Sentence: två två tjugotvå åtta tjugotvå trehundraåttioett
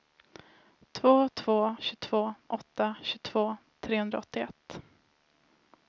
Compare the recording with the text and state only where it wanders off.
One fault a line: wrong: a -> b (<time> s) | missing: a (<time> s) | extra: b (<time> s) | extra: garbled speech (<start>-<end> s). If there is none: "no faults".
no faults